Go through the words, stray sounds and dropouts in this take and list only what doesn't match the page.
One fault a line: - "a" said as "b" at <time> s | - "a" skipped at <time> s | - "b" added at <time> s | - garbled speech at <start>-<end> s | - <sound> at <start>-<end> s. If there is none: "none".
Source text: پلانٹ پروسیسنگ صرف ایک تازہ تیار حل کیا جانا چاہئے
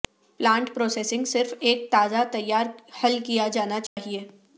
- dropout at 3.9-4.0 s